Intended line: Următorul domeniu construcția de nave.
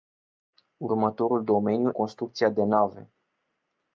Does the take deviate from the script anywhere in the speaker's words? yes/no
no